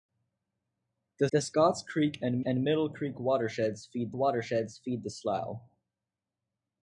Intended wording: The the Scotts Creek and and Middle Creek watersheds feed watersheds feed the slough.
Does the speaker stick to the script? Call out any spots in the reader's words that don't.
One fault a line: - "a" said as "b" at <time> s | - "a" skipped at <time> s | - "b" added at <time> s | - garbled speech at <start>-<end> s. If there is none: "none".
none